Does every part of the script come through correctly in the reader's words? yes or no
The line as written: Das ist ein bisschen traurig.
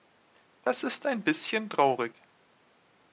yes